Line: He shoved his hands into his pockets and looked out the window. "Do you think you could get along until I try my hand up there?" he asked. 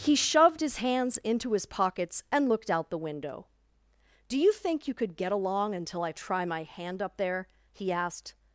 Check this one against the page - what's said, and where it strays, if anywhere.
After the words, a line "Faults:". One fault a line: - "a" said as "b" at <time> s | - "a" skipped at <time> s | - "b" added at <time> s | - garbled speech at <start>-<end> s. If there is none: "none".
He shoved his hands into his pockets and looked out the window. "Do you think you could get along until I try my hand up there?" he asked.
Faults:
none